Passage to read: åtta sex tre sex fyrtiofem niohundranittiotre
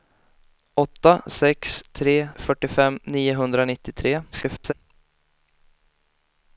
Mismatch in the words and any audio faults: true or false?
true